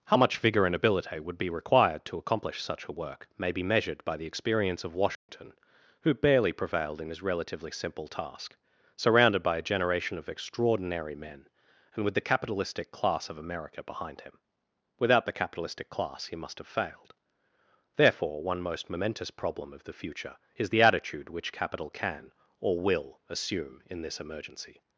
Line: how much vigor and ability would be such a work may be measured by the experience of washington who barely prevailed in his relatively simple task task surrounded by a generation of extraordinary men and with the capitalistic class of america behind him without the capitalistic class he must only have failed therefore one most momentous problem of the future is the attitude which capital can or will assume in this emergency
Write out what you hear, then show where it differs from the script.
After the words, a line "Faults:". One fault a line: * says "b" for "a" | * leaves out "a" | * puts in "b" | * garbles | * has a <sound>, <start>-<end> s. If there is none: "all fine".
how much vigor and ability would be required to accomplish such a work may be measured by the experience of washington who barely prevailed in his relatively simple task surrounded by a generation of extraordinary men and with the capitalistic class of america behind him without the capitalistic class he must have failed therefore one most momentous problem of the future is the attitude which capital can or will assume in this emergency
Faults:
* puts in "required to accomplish"
* has a dropout, 5.1-5.3 s
* leaves out "task"
* leaves out "only"